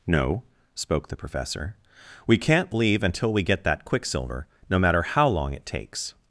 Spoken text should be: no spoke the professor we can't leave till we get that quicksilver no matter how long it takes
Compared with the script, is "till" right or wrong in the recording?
wrong